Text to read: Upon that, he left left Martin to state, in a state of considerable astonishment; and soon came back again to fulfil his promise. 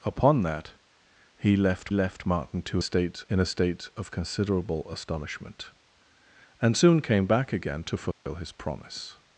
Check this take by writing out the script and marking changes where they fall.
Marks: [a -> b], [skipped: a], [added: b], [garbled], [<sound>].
Upon that, he left left Martin to state, in a state of considerable astonishment; and soon came back again to fulfil [dropout] his promise.